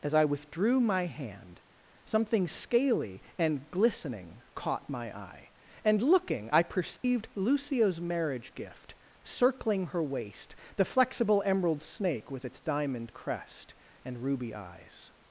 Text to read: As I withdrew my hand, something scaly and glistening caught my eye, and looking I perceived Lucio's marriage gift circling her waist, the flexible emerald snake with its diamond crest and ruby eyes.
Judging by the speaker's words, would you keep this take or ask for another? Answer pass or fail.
pass